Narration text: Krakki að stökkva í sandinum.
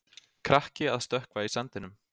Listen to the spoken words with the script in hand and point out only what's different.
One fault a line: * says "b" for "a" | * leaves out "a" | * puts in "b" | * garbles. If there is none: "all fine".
all fine